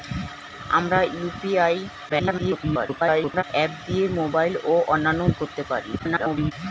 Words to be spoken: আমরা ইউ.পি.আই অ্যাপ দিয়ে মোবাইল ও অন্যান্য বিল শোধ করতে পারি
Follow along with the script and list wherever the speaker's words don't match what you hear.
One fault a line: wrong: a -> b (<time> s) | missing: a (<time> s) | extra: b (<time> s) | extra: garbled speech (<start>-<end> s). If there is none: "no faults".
extra: garbled speech (2.1-3.4 s)
missing: বিল শোধ (5.2 s)
extra: garbled speech (6.0-6.5 s)